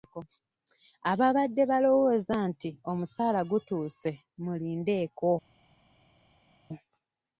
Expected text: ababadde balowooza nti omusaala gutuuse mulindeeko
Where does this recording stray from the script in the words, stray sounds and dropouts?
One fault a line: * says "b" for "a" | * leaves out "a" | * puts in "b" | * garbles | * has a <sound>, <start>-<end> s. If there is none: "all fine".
all fine